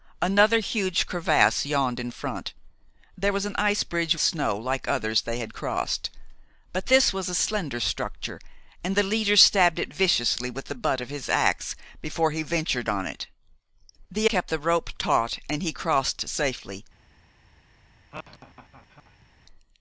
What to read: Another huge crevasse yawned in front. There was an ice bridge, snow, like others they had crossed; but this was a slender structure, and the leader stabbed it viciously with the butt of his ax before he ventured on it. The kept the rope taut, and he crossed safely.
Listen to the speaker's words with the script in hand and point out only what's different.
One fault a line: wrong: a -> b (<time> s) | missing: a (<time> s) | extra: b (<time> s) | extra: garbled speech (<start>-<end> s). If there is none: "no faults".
no faults